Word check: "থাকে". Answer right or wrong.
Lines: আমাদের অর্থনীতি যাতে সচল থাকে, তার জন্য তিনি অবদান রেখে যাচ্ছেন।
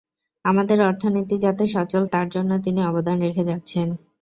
wrong